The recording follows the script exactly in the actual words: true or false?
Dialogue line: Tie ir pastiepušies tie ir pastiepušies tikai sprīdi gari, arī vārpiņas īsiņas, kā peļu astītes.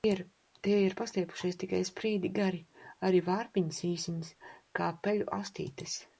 false